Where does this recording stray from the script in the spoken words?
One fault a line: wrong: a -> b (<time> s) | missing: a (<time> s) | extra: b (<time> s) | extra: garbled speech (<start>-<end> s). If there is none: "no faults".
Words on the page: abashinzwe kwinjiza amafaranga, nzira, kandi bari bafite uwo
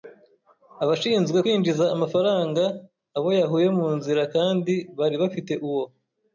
extra: abo yahuye mu (3.2 s)